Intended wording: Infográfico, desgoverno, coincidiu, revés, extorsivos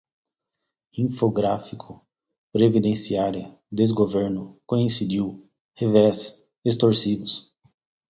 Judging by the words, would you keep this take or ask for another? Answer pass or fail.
fail